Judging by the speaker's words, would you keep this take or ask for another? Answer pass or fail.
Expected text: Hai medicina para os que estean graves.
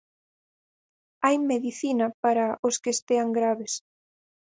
pass